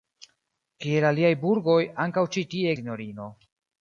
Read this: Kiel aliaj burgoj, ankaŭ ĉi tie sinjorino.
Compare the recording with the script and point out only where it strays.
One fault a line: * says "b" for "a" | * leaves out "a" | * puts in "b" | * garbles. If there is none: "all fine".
all fine